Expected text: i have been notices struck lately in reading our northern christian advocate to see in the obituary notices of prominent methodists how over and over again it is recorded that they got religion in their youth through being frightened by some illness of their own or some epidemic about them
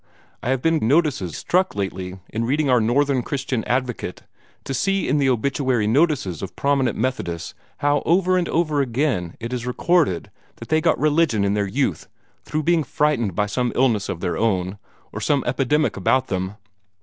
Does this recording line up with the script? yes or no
yes